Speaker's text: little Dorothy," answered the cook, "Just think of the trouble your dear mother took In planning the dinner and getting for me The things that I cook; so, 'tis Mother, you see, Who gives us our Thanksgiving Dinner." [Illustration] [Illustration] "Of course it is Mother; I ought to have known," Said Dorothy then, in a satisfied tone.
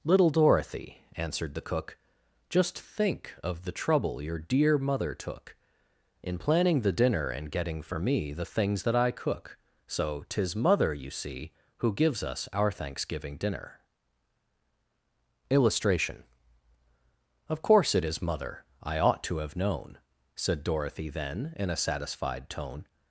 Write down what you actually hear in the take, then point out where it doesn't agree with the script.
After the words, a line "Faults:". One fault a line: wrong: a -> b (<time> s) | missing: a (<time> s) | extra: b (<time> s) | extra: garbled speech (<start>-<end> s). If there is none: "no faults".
little Dorothy," answered the cook, "Just think of the trouble your dear mother took In planning the dinner and getting for me The things that I cook; so, 'tis Mother, you see, Who gives us our Thanksgiving Dinner." [Illustration] "Of course it is Mother; I ought to have known," Said Dorothy then, in a satisfied tone.
Faults:
missing: Illustration (16.2 s)